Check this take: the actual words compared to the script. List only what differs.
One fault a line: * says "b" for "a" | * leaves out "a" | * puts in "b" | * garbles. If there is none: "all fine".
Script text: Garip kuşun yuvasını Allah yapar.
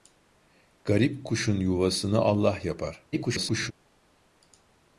* garbles